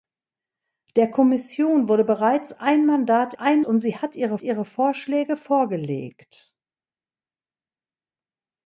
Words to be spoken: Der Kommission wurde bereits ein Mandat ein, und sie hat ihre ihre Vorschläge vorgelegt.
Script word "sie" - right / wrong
right